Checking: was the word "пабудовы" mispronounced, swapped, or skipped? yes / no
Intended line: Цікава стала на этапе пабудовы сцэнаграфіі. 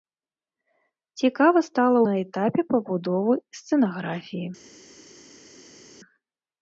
no